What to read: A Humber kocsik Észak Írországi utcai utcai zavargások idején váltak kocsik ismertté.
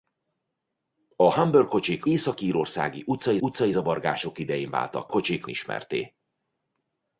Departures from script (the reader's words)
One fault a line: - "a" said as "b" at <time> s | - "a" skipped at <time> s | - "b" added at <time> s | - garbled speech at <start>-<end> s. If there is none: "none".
none